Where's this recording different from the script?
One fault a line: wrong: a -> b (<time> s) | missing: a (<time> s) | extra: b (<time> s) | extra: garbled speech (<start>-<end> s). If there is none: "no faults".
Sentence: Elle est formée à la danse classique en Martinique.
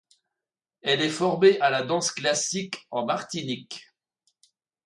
no faults